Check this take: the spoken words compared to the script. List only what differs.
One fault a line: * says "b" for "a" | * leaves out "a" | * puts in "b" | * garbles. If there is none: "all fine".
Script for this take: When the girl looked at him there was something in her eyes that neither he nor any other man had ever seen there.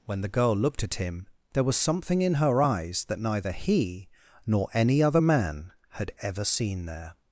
all fine